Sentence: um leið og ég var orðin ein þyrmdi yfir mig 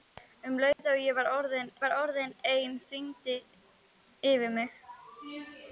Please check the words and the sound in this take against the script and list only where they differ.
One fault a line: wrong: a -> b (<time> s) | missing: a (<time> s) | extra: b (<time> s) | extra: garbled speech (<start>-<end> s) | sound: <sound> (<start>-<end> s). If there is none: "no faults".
sound: dropout (0.7-0.8 s)
extra: var orðin (1.8 s)